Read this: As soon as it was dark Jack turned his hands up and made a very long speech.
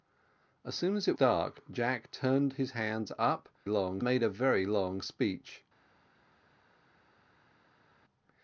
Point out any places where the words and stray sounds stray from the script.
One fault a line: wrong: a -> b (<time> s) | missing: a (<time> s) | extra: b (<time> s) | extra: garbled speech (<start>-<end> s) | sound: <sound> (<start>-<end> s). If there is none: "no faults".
missing: was (1.1 s)
wrong: and -> long (3.7 s)